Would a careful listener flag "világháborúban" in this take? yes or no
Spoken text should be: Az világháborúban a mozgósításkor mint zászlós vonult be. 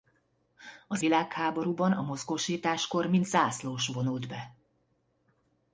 no